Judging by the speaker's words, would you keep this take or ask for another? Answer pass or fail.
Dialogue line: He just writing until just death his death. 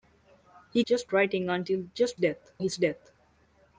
pass